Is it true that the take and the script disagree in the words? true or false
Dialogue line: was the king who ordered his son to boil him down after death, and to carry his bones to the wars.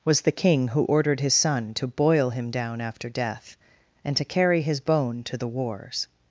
true